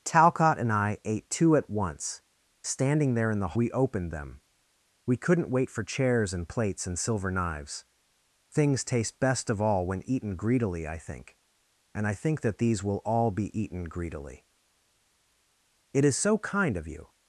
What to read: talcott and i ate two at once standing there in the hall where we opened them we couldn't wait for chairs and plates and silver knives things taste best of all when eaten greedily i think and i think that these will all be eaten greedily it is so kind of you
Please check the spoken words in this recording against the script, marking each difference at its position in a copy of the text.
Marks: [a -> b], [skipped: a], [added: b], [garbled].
talcott and i ate two at once standing there in the [skipped: hall where] we opened them we couldn't wait for chairs and plates and silver knives things taste best of all when eaten greedily i think and i think that these will all be eaten greedily it is so kind of you